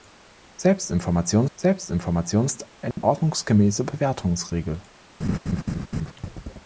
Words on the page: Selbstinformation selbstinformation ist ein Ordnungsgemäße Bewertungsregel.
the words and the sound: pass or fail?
fail